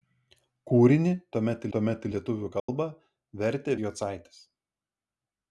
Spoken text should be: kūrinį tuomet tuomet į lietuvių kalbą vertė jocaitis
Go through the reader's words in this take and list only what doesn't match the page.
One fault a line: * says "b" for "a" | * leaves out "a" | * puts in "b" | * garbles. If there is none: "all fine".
all fine